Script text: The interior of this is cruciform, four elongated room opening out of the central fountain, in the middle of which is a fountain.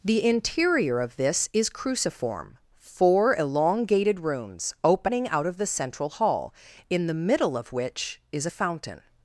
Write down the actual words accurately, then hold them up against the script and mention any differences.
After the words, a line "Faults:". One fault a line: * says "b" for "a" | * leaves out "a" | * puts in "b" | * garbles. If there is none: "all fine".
The interior of this is cruciform, four elongated rooms opening out of the central hall, in the middle of which is a fountain.
Faults:
* says "rooms" for "room"
* says "hall" for "fountain"